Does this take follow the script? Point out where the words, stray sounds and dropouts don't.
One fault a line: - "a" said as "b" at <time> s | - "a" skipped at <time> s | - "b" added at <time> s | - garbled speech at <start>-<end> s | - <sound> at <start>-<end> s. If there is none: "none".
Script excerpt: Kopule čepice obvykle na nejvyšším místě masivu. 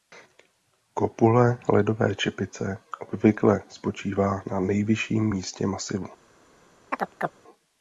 - "ledové" added at 1.7 s
- "spočívá" added at 3.7 s
- chirp at 6.9-7.4 s